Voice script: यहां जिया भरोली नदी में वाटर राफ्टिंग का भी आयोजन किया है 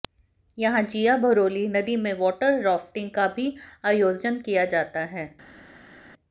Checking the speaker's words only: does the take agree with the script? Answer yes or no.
no